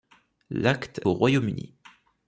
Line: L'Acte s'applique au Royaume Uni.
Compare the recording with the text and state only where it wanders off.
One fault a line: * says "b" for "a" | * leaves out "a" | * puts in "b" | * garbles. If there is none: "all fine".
* leaves out "s'applique"